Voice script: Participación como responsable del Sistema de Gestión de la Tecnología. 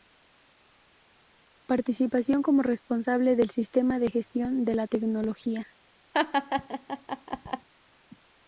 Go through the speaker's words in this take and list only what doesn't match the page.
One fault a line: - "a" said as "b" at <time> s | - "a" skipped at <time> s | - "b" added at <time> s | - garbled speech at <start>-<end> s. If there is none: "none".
none